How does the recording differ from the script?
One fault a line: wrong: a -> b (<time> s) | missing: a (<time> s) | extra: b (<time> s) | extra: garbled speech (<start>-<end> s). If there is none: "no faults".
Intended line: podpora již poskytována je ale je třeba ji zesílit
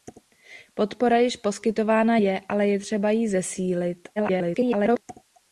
extra: garbled speech (4.2-5.0 s)